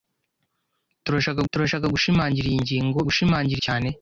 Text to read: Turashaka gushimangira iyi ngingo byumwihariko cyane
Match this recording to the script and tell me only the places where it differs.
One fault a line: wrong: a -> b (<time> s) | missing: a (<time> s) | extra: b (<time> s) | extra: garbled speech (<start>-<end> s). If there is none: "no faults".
extra: turashaka (1.5 s)
wrong: byumwihariko -> gushimangira (3.1 s)